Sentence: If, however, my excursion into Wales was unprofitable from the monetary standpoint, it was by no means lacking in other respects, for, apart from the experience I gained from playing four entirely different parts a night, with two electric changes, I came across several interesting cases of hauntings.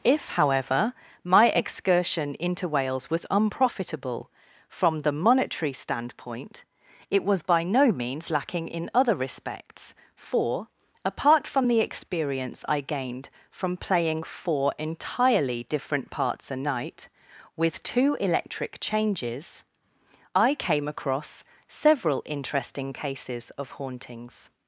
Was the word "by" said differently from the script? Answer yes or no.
no